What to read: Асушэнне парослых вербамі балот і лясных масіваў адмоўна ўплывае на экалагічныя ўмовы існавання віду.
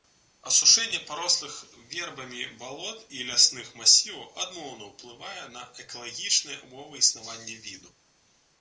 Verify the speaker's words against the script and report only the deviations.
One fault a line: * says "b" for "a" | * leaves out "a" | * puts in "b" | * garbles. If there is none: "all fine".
all fine